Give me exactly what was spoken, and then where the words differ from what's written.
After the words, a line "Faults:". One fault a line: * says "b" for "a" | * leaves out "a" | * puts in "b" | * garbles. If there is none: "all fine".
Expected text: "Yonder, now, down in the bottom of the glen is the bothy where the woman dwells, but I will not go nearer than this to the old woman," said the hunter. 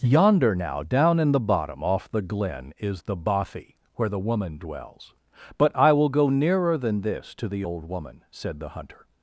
"Yonder, now, down in the bottom off the glen is the bothy where the woman dwells, but I will go nearer than this to the old woman," said the hunter.
Faults:
* says "off" for "of"
* leaves out "not"